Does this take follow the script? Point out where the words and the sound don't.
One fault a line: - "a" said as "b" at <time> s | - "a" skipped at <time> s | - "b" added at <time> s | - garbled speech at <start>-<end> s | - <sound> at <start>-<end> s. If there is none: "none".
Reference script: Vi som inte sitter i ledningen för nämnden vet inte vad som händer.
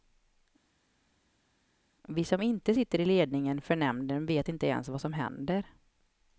- "ens" added at 4.7 s